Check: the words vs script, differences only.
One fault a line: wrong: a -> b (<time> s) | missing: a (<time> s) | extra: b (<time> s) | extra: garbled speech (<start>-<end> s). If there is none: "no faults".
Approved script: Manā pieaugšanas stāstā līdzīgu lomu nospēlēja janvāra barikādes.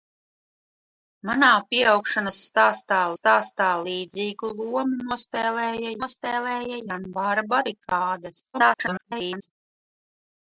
extra: stāstā (3.2 s)
extra: nospēlēja (6.0 s)
extra: garbled speech (8.5-9.5 s)